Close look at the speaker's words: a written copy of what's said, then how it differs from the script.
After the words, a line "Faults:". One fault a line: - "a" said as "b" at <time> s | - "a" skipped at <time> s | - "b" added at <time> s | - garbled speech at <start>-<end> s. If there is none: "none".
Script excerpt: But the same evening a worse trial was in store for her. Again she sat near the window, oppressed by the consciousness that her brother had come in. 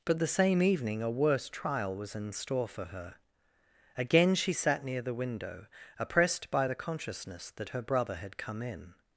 But the same evening a worse trial was in store for her. Again she sat near the window, oppressed by the consciousness that her brother had come in.
Faults:
none